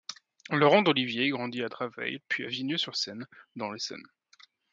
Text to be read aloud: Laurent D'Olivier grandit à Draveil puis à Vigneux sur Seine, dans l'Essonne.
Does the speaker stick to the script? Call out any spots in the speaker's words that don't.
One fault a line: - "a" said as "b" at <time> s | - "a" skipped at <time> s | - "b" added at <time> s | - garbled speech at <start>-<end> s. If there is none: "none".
none